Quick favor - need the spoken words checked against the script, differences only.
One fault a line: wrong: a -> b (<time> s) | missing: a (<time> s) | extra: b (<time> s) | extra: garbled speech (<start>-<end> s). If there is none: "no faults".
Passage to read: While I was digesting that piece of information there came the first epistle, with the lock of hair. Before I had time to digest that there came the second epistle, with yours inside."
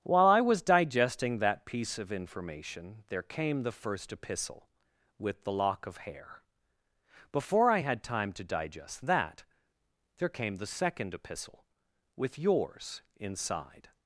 no faults